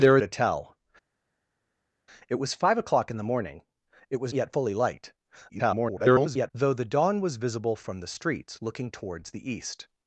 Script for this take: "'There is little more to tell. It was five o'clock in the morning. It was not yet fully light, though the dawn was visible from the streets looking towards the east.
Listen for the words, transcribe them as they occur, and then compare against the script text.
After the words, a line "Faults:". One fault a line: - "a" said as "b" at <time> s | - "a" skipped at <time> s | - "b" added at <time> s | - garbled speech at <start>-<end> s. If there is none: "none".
"'There to tell. It was five o'clock in the morning. It was yet fully light, [garbled] though the dawn was visible from the streets looking towards the east.
Faults:
- "is little more" skipped at 0.2 s
- "not" skipped at 4.3 s
- garbled speech at 5.5-6.5 s